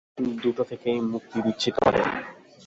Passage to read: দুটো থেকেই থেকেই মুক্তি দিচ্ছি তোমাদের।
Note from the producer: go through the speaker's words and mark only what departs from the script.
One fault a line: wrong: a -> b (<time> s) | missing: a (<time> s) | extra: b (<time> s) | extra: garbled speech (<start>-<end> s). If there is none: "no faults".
missing: থেকেই (1.0 s)